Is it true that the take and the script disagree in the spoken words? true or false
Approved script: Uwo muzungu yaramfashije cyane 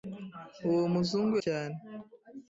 true